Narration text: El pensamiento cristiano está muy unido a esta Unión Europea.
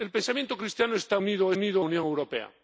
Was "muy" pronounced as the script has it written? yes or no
no